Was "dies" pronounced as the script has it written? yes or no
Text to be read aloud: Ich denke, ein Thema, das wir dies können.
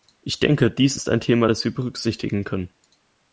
no